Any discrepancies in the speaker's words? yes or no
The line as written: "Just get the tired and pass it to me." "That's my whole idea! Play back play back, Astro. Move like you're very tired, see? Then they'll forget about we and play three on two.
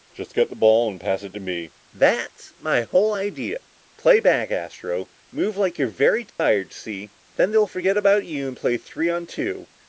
yes